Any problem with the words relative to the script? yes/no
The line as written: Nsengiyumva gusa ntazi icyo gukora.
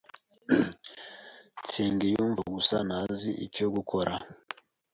no